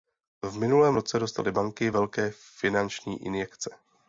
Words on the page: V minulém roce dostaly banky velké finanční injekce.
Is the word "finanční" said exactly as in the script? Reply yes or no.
yes